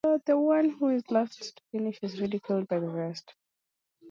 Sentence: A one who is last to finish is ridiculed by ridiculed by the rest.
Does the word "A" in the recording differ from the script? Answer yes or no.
yes